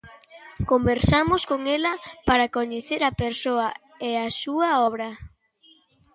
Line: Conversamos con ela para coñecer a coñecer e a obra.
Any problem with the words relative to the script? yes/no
yes